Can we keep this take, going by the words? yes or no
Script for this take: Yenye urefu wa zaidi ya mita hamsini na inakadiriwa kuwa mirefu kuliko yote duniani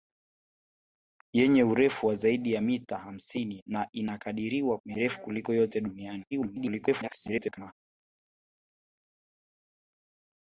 no